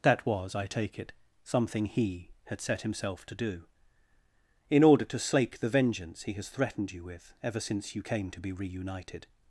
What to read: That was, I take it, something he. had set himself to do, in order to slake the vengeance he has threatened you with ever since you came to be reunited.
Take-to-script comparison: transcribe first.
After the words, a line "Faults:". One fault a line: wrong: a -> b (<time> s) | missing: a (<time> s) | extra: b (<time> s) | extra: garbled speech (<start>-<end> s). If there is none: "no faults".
That was, I take it, something he. had set himself to do, in order to slake the vengeance he has threatened you with ever since you came to be reunited.
Faults:
no faults